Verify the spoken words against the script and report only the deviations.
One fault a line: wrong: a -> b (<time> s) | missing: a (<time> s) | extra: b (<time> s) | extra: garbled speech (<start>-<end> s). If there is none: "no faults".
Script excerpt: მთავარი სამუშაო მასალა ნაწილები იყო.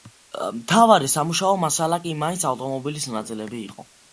extra: კი მაინც ავტომობილის (2.1 s)